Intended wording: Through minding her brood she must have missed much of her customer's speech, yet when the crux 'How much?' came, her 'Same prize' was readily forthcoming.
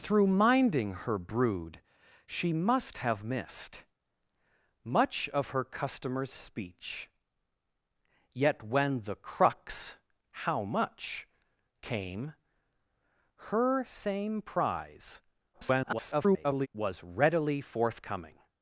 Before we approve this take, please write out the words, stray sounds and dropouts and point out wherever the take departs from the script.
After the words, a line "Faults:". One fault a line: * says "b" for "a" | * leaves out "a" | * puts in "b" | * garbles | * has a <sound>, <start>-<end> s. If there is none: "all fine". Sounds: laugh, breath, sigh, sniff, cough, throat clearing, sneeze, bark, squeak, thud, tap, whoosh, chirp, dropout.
Through minding her brood she must have missed much of her customer's speech, yet when the crux 'How much?' came, her 'Same prize' [garbled] was readily forthcoming.
Faults:
* garbles